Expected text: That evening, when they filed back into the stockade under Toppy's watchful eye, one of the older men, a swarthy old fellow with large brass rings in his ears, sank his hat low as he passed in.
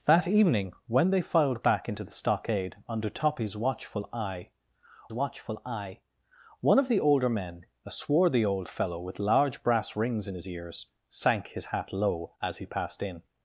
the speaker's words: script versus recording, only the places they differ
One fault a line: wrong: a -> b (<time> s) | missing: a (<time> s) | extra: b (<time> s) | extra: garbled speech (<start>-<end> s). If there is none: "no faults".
extra: watchful eye (5.1 s)